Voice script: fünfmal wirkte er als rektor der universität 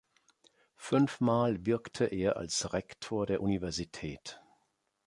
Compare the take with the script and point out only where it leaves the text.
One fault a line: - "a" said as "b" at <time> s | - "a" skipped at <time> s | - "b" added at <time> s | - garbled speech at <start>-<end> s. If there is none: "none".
none